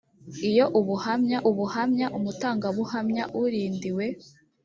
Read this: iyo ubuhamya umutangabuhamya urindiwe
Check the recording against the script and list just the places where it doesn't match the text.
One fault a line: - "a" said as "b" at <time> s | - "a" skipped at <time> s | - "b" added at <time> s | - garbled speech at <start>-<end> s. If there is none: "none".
- "ubuhamya" added at 1.5 s